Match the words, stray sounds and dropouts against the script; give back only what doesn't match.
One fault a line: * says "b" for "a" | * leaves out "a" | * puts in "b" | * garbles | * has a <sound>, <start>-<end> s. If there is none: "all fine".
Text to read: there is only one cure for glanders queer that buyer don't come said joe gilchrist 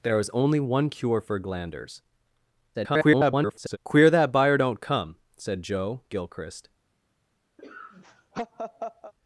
* garbles
* has a laugh, 7.6-9.1 s